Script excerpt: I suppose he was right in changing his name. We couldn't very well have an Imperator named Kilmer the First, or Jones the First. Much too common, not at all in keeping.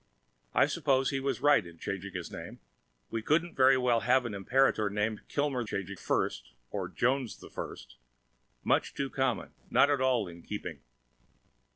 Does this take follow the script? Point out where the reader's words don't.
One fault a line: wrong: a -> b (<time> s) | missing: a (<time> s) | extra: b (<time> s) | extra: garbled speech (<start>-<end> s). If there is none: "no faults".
wrong: the -> changing (5.6 s)